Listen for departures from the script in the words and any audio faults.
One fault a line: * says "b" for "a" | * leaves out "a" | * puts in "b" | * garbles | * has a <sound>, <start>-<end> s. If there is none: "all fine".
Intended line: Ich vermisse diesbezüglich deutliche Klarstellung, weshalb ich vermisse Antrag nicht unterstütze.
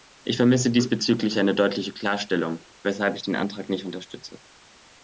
* puts in "eine"
* says "den" for "vermisse"